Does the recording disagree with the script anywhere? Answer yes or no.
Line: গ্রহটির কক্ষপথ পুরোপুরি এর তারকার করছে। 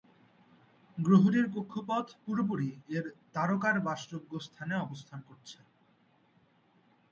yes